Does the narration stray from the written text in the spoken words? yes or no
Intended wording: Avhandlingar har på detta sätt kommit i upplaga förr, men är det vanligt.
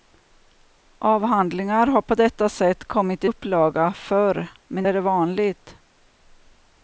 no